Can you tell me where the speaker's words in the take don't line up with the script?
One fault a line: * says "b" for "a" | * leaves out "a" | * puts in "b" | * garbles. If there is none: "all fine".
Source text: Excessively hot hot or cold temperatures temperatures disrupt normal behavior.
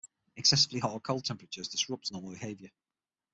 * leaves out "hot"
* leaves out "temperatures"